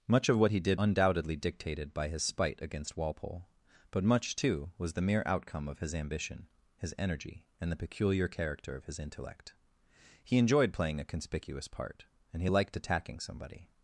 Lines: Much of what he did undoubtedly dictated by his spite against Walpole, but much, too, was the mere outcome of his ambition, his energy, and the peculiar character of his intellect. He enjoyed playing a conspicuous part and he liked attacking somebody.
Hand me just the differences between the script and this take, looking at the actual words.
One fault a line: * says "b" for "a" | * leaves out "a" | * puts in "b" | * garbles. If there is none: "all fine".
all fine